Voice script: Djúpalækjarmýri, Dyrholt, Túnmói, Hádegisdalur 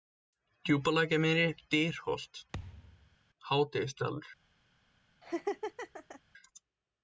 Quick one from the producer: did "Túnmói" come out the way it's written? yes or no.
no